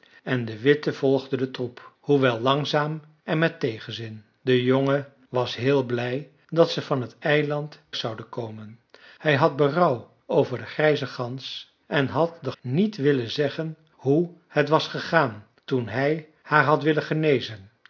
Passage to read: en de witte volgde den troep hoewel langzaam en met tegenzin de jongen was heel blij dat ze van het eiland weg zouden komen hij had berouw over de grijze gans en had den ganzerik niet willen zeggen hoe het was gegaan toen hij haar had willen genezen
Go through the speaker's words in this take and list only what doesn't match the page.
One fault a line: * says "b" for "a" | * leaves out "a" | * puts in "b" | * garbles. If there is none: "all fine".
* leaves out "weg"
* leaves out "ganzerik"